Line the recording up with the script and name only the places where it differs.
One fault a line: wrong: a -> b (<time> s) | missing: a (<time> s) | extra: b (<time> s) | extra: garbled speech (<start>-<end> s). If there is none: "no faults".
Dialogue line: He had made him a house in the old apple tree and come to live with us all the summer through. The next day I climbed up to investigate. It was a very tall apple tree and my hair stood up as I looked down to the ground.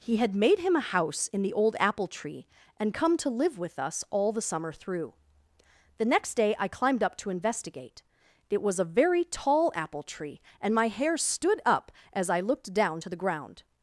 no faults